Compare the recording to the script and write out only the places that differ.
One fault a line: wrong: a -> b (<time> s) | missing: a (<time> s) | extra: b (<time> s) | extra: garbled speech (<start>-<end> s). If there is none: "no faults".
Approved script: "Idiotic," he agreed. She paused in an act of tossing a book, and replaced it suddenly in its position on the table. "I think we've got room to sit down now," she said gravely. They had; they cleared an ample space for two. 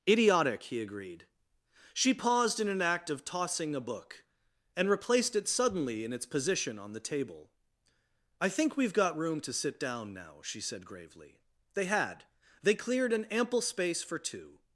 no faults